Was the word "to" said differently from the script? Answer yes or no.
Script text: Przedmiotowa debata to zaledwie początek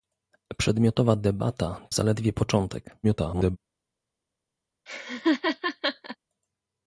yes